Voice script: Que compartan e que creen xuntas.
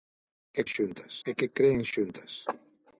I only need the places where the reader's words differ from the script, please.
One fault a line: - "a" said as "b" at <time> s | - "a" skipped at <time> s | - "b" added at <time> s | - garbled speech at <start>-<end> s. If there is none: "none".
- "compartan" said as "xuntas" at 0.7 s